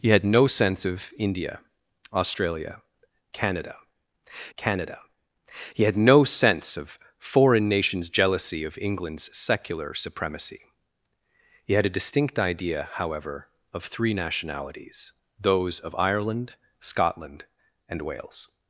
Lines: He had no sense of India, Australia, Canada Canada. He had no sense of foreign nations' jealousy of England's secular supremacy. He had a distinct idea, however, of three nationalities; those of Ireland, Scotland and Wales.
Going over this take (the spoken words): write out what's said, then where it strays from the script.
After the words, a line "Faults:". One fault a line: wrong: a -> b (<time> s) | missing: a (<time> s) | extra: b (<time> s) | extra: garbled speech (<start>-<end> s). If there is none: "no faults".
He had no sense of India, Australia, Canada Canada. He had no sense of foreign nations' jealousy of England's secular supremacy. He had a distinct idea, however, of three nationalities; those of Ireland, Scotland and Wales.
Faults:
no faults